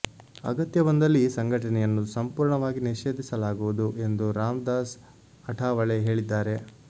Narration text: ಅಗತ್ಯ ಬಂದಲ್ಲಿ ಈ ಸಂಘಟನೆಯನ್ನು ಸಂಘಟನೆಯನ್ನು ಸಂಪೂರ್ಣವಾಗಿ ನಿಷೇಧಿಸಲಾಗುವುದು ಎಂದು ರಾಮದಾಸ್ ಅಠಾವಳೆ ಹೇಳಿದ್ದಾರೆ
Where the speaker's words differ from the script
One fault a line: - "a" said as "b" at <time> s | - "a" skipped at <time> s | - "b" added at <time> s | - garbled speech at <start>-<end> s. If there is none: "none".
- "ಸಂಘಟನೆಯನ್ನು" skipped at 2.0 s